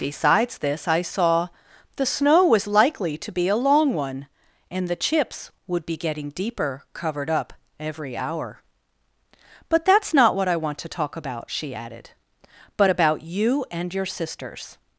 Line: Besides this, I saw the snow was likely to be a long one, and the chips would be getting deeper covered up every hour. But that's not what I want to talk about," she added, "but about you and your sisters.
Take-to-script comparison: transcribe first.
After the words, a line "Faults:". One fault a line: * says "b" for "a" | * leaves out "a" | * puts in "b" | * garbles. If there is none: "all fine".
Besides this, I saw the snow was likely to be a long one, and the chips would be getting deeper covered up every hour. But that's not what I want to talk about," she added, "but about you and your sisters.
Faults:
all fine